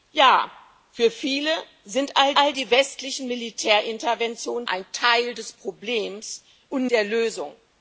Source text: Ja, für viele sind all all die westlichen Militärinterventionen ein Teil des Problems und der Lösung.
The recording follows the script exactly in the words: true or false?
true